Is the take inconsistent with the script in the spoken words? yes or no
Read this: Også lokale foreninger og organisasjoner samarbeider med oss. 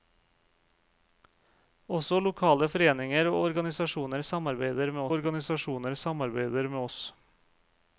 yes